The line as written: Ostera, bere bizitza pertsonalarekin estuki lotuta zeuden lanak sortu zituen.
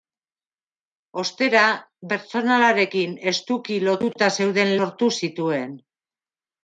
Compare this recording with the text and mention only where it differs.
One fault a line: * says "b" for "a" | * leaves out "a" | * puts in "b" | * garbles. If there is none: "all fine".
* leaves out "bere bizitza"
* leaves out "lanak"